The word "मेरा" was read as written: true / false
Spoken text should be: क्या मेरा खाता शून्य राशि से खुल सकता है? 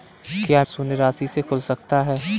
false